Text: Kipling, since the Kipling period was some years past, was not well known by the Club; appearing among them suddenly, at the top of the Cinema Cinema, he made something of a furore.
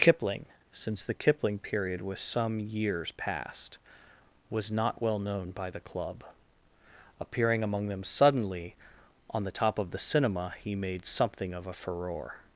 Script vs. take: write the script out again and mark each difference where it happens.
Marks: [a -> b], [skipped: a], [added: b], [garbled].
Kipling, since the Kipling period was some years past, was not well known by the Club; appearing among them suddenly, [at -> on] the top of the Cinema [skipped: Cinema,] he made something of a furore.